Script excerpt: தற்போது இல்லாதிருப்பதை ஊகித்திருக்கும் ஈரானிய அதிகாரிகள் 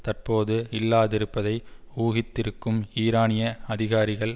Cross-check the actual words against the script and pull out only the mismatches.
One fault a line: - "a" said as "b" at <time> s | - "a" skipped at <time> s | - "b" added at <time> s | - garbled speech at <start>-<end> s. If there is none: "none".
none